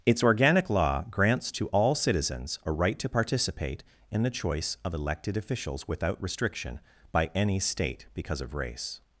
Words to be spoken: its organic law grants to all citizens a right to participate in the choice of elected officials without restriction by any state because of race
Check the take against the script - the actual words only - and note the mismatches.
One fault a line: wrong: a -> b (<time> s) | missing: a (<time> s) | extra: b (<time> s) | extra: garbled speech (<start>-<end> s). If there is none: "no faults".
no faults